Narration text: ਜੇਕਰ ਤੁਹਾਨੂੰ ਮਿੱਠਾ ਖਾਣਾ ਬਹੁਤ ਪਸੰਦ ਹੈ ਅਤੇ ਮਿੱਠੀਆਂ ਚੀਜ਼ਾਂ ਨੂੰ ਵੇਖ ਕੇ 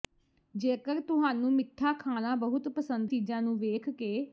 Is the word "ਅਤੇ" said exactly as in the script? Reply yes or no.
no